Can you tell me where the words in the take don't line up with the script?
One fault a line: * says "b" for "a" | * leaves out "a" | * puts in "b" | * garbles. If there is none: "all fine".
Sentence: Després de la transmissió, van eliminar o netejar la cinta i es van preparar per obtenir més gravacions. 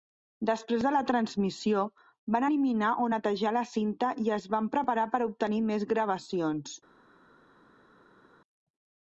all fine